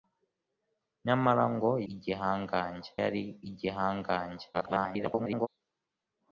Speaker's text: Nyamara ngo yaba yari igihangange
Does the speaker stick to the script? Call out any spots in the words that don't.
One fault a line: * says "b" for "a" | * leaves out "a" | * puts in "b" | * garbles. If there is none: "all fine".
* says "igihangange" for "yaba"
* garbles